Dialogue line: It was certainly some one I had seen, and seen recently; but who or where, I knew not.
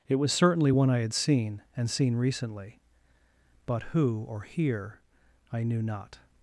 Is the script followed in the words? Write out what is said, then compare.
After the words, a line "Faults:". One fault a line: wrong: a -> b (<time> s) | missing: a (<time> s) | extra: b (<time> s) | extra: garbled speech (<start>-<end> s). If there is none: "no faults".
It was certainly one I had seen, and seen recently; but who or here, I knew not.
Faults:
missing: some (0.7 s)
wrong: where -> here (4.4 s)